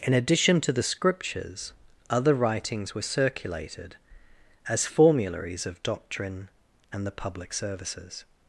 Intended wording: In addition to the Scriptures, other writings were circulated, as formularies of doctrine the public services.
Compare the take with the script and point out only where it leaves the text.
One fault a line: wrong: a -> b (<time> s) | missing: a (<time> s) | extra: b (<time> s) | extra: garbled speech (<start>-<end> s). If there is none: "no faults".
extra: and (6.9 s)